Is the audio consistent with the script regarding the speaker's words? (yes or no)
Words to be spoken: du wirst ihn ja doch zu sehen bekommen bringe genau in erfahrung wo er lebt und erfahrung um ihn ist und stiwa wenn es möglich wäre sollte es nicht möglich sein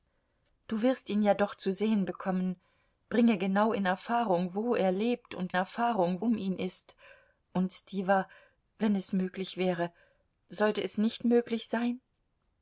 yes